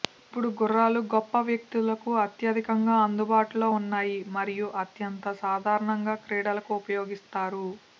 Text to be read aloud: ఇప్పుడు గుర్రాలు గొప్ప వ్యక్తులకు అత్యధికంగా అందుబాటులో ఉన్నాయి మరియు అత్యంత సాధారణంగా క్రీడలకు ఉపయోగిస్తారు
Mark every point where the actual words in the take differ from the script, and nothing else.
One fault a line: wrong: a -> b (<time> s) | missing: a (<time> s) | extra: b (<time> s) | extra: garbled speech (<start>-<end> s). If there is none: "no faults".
no faults